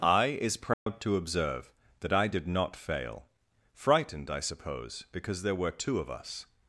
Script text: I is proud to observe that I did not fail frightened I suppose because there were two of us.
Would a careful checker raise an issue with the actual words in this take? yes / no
no